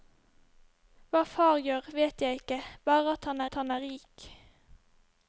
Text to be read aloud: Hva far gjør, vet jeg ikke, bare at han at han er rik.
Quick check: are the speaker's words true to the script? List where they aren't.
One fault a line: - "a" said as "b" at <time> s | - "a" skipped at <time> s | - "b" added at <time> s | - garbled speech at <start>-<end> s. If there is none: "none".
none